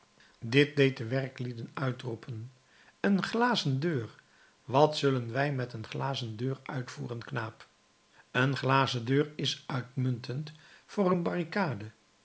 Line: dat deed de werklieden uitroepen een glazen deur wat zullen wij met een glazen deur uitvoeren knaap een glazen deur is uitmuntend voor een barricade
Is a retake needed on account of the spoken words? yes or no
yes